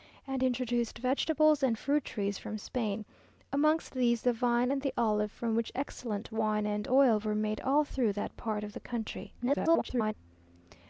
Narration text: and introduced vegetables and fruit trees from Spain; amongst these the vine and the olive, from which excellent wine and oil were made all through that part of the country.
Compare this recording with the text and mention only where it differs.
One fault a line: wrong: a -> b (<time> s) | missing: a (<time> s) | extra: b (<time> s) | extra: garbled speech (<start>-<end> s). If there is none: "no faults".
extra: garbled speech (9.4-10.1 s)